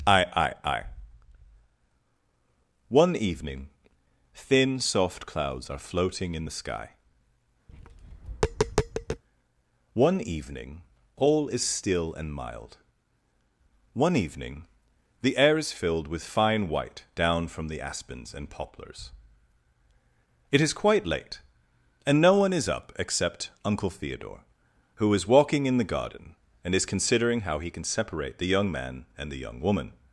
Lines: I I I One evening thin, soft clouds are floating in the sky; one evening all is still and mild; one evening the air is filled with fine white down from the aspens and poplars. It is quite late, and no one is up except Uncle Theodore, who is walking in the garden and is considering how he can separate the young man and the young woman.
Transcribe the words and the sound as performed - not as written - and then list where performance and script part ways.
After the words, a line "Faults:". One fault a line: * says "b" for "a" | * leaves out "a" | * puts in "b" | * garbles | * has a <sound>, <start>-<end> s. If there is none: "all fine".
I I I One evening thin, soft clouds are floating in the sky; one evening all is still and mild; one evening the air is filled with fine white down from the aspens and poplars. It is quite late, and no one is up except Uncle Theodore, who is walking in the garden and is considering how he can separate the young man and the young woman.
Faults:
* has a tap, 7.7-9.2 s